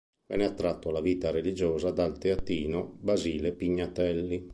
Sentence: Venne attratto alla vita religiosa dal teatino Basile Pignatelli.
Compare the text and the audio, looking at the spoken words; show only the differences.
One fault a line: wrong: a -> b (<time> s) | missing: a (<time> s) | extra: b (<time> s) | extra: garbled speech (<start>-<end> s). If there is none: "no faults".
no faults